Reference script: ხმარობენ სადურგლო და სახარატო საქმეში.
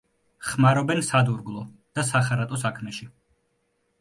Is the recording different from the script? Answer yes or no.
no